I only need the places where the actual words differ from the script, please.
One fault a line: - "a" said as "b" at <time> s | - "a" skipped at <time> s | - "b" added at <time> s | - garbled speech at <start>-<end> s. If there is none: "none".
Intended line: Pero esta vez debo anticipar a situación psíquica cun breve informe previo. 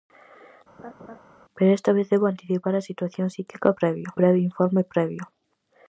- "cun" said as "previo" at 3.8 s